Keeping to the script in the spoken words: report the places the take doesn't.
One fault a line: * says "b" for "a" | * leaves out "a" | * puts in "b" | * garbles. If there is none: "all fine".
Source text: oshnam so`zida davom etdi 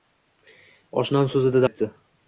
* leaves out "davom"